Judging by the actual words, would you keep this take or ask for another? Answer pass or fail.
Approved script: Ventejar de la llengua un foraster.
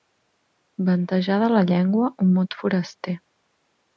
fail